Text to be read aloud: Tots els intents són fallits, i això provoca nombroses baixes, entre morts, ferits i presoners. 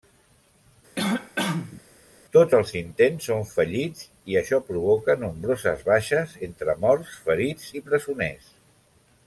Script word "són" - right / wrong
right